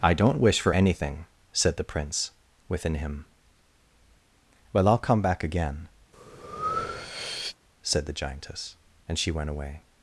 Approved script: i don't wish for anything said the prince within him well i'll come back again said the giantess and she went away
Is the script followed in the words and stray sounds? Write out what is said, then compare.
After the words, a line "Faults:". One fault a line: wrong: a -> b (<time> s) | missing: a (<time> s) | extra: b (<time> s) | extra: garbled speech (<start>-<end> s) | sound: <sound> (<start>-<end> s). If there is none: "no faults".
i don't wish for anything said the prince within him well i'll come back again said the giantess and she went away
Faults:
sound: breath (6.1-7.6 s)